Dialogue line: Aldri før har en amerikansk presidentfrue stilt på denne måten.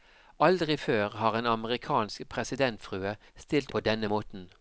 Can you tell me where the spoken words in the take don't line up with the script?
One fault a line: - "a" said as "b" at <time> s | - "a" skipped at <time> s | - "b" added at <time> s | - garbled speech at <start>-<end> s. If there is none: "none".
none